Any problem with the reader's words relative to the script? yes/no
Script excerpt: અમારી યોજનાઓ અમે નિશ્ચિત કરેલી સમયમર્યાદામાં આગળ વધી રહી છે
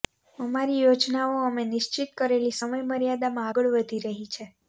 no